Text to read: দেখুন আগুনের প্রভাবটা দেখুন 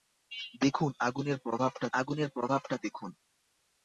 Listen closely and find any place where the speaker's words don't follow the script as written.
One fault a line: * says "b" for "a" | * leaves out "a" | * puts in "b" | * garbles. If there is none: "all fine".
* puts in "আগুনের প্রভাবটা"